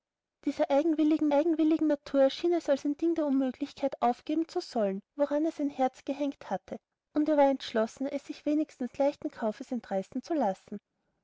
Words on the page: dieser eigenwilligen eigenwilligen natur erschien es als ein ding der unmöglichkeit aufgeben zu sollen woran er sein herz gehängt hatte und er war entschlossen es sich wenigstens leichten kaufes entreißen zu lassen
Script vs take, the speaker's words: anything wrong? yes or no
no